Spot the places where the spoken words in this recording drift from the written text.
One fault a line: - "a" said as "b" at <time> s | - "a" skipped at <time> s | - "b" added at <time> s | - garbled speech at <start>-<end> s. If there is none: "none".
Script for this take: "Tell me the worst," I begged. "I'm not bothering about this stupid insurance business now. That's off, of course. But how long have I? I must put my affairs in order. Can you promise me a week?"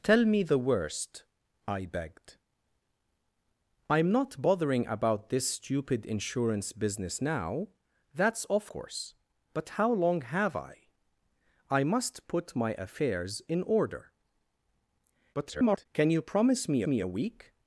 - "of" skipped at 8.7 s
- garbled speech at 15.3-15.9 s
- "me" added at 16.9 s